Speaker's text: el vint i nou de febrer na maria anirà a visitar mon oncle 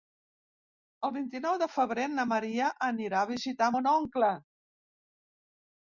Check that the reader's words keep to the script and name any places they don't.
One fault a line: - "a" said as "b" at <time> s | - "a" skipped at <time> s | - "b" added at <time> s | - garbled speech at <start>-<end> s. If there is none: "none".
none